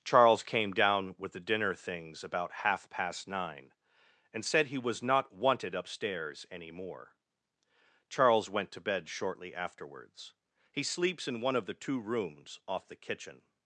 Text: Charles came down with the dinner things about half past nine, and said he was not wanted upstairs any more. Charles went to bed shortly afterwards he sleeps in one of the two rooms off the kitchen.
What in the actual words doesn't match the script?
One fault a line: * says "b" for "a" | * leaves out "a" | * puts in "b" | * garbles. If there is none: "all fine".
all fine